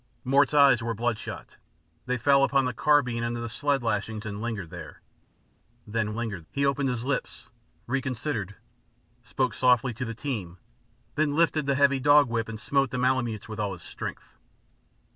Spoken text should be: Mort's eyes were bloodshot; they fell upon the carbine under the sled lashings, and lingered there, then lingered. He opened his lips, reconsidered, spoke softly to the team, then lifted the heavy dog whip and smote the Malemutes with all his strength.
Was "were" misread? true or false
false